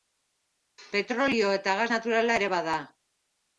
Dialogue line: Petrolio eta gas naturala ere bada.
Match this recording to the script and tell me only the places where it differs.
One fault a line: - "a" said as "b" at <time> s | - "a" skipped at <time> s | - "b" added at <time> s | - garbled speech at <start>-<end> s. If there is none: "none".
none